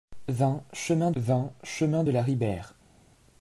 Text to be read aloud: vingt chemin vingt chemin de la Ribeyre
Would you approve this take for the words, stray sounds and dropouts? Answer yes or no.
yes